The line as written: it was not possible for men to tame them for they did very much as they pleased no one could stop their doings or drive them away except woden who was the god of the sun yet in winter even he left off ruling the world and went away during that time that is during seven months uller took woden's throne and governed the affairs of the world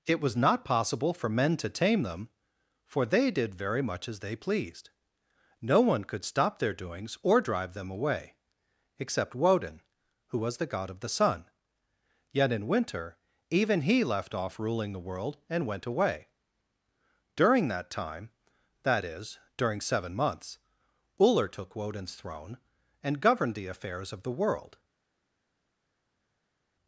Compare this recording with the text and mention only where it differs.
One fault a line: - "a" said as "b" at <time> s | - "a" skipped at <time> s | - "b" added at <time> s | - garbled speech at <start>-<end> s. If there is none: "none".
none